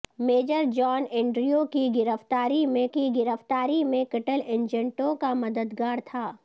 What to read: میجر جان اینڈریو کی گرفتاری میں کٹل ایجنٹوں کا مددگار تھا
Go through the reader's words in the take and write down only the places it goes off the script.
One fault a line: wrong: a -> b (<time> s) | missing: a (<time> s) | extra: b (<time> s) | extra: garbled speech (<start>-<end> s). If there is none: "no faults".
extra: کی گرفتاری میں (2.9 s)